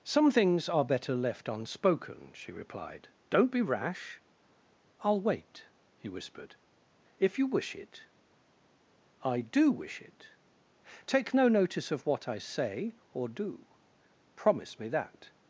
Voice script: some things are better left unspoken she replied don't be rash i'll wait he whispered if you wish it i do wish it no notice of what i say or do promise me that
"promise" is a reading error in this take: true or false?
false